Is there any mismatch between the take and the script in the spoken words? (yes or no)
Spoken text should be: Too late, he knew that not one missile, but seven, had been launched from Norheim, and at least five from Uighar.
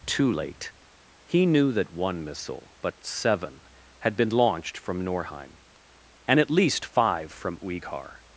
yes